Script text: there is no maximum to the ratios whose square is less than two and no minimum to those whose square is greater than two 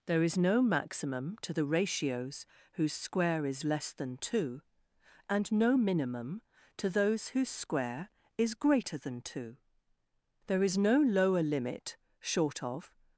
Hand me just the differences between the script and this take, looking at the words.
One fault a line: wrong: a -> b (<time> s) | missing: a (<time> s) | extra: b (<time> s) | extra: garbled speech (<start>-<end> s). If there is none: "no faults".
extra: there is no lower limit short of (10.5 s)